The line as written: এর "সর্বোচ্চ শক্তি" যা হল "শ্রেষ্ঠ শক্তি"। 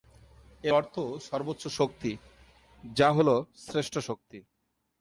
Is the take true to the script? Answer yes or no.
no